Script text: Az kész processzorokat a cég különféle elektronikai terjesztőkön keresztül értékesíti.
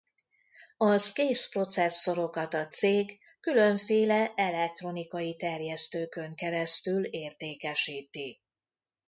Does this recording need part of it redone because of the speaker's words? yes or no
no